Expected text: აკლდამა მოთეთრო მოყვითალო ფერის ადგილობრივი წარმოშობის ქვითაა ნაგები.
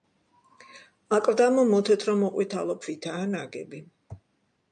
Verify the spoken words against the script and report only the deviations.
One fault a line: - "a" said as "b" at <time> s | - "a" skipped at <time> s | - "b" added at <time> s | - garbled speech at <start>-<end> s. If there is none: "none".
- "ფერის ადგილობრივი წარმოშობის" skipped at 2.8 s